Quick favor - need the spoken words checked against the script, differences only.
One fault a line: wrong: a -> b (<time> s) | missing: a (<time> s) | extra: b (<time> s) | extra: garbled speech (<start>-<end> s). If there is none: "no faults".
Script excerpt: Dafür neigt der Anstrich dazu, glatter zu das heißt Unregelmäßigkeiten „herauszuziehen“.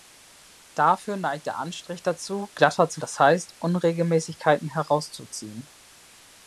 no faults